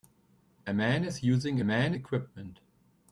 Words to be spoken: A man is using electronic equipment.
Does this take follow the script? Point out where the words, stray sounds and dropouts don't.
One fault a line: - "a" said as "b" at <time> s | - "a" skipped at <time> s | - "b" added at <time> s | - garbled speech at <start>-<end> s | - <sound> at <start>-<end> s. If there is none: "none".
- "electronic" said as "man" at 1.6 s